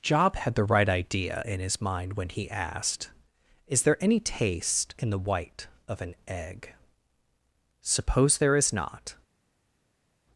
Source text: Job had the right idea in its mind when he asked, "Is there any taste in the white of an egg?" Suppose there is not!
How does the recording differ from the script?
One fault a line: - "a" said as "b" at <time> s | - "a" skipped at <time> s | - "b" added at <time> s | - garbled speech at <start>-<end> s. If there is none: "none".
- "its" said as "his" at 1.6 s